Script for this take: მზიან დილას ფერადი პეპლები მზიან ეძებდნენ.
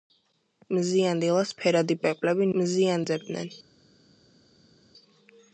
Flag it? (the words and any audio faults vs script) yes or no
no